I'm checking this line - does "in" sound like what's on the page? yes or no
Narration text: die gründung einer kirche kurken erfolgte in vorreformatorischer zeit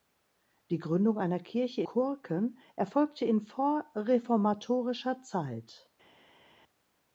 yes